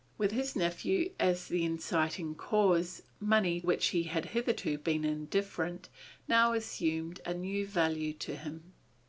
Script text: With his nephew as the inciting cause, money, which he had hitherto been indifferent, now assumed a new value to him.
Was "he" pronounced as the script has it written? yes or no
yes